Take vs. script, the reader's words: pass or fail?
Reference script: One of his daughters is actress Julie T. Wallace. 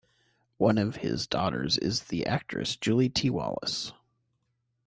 fail